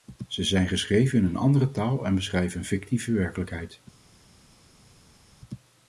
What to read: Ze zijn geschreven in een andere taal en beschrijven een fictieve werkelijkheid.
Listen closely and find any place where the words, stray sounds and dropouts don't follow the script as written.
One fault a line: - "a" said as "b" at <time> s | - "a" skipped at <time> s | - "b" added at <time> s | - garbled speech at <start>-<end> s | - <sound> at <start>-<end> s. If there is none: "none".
none